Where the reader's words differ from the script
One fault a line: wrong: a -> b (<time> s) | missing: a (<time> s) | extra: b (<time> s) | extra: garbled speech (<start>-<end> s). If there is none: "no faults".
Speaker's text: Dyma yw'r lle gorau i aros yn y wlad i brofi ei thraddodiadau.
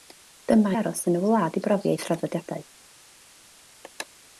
missing: yw'r lle gorau (0.7 s)